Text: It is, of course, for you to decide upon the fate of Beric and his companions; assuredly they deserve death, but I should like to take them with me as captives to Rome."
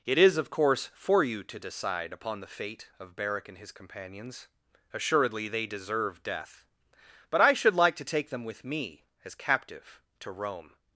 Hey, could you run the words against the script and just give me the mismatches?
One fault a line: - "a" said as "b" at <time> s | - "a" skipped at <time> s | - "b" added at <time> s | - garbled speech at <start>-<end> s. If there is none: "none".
- "captives" said as "captive" at 9.3 s